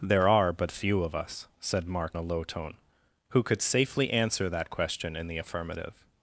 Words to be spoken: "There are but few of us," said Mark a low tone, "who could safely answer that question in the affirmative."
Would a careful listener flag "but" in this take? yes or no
no